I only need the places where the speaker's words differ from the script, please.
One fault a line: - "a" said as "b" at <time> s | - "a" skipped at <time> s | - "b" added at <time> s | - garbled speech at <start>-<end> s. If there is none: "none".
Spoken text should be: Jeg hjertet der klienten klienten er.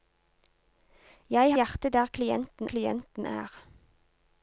none